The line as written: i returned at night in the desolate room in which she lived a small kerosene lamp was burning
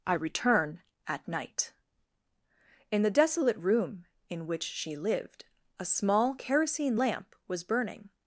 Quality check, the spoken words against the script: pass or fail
fail